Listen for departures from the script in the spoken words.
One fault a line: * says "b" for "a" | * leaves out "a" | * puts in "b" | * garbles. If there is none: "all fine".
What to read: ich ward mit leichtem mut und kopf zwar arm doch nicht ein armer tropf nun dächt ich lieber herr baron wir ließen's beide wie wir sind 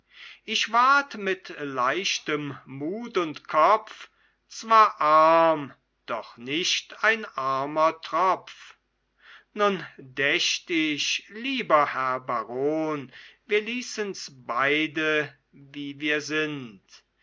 all fine